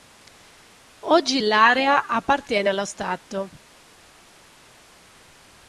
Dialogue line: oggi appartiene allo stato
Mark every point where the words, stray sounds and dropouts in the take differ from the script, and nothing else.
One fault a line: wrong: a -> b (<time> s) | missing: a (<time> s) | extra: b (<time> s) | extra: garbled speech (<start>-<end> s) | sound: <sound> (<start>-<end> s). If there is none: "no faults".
extra: l'area (1.4 s)